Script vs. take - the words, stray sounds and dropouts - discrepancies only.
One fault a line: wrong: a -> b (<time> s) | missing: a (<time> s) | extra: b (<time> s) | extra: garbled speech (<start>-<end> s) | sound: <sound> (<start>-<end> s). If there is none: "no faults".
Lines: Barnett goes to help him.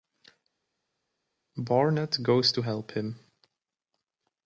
no faults